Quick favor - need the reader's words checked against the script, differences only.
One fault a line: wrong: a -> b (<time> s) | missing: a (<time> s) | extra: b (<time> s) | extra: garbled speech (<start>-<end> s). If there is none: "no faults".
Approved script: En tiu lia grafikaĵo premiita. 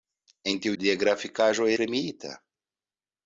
no faults